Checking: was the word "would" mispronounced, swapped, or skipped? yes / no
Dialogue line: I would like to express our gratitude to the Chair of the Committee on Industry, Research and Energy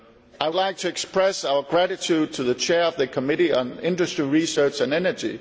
yes